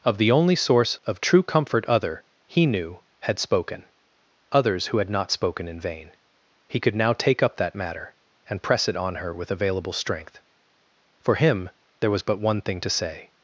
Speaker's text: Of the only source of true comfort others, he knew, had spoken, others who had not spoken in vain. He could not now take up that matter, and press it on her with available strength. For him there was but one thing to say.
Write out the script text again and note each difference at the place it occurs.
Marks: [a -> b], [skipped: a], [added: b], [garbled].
Of the only source of true comfort [others, -> other] he knew, had spoken, others who had not spoken in vain. He could [skipped: not] now take up that matter, and press it on her with available strength. For him there was but one thing to say.